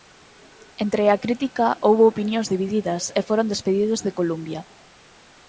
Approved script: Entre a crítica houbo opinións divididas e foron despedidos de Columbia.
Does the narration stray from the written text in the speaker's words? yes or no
no